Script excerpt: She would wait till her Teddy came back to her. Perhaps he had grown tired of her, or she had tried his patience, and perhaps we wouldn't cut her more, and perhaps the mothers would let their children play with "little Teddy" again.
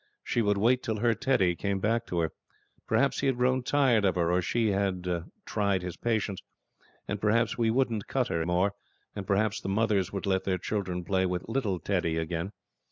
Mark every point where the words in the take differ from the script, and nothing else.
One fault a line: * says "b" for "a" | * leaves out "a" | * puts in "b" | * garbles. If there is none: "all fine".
all fine